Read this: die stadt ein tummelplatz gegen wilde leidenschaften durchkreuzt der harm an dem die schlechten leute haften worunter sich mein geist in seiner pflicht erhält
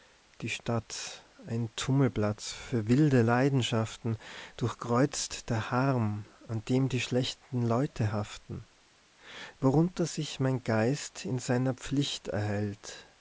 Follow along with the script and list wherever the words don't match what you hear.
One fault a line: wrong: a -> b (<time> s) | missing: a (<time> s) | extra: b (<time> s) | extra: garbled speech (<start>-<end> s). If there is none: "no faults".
wrong: gegen -> für (2.5 s)